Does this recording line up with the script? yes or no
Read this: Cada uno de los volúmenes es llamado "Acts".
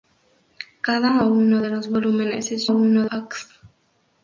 no